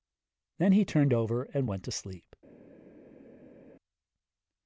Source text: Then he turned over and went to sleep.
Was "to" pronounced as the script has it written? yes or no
yes